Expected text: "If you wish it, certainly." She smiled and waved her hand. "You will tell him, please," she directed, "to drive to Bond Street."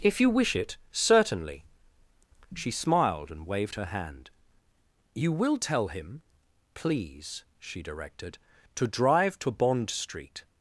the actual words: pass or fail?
pass